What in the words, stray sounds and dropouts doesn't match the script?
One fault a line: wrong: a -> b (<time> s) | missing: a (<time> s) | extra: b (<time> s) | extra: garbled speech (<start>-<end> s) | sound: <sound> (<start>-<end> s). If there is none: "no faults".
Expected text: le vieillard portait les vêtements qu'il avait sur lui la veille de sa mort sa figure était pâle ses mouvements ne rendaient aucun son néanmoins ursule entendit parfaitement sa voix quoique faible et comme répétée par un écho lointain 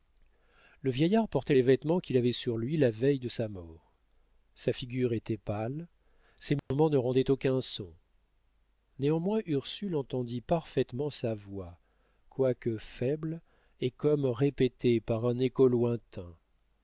sound: dropout (6.6-6.7 s)